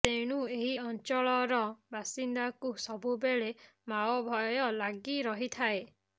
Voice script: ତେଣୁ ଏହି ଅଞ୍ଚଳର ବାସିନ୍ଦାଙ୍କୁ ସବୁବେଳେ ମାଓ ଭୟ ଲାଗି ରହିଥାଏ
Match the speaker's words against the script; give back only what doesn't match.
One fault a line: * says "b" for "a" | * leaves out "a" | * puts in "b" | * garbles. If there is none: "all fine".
all fine